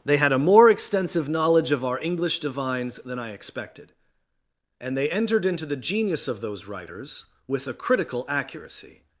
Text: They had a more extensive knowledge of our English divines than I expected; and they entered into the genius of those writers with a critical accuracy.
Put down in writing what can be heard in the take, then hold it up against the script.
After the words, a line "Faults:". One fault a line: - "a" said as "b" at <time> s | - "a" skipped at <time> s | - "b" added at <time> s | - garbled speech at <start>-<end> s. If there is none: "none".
They had a more extensive knowledge of our English divines than I expected; and they entered into the genius of those writers with a critical accuracy.
Faults:
none